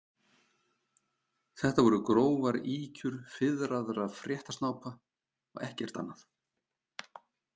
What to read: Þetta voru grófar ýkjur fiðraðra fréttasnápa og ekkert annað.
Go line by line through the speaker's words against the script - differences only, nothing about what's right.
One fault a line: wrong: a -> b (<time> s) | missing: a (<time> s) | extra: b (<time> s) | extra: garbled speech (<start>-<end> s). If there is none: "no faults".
no faults